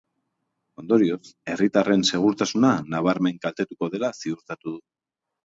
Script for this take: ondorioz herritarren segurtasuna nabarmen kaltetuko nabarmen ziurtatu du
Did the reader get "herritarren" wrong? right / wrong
right